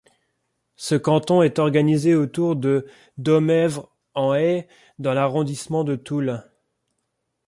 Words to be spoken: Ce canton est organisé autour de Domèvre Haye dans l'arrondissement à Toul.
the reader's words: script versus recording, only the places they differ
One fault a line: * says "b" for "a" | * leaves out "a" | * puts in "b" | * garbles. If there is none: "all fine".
* puts in "en"
* says "de" for "à"